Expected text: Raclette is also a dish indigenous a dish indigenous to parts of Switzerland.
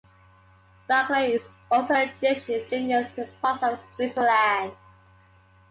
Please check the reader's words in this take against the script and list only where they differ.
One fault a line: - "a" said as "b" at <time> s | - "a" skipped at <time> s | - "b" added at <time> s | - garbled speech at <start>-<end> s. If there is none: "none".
- "a dish indigenous" skipped at 3.1 s